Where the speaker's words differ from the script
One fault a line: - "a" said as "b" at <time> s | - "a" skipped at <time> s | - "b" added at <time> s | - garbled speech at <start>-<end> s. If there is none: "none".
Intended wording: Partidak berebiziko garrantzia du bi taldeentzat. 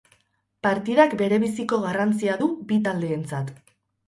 none